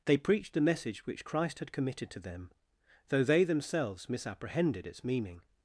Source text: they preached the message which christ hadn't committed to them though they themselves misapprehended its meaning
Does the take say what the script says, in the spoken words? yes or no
no